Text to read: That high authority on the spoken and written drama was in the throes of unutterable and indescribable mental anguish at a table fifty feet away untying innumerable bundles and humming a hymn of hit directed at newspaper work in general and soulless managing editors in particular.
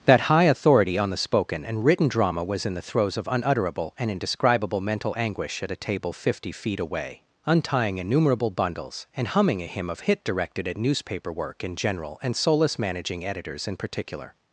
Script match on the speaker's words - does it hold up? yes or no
yes